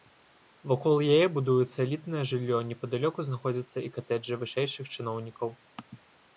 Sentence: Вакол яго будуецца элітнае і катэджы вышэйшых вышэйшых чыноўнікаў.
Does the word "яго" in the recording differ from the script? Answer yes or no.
yes